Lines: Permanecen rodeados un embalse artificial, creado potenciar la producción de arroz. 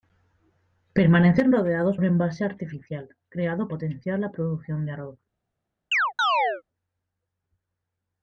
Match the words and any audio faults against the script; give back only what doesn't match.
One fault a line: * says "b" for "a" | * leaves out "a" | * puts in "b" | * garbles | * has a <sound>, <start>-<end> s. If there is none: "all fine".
* has a chirp, 5.9-6.6 s